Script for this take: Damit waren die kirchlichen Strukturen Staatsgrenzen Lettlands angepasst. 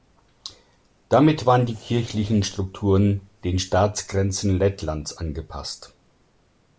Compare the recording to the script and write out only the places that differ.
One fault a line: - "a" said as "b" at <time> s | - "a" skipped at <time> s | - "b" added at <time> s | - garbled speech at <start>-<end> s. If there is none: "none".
- "den" added at 3.4 s